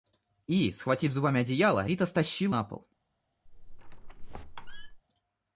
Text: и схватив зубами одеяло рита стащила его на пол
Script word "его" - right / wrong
wrong